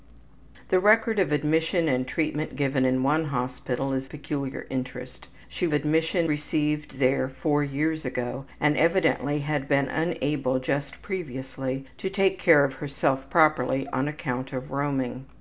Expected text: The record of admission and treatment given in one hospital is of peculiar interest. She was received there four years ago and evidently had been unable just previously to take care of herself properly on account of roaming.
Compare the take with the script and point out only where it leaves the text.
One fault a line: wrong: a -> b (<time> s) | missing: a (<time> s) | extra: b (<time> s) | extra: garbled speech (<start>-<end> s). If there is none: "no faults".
missing: of (4.1 s)
wrong: was -> admission (5.7 s)